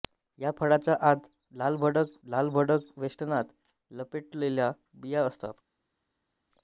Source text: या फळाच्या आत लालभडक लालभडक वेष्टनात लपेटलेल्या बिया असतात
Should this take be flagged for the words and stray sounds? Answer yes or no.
no